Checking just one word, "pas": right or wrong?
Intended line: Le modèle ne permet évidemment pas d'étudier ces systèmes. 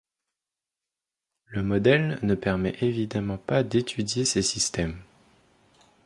right